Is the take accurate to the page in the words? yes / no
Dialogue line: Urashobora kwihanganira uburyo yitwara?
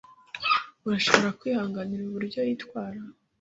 yes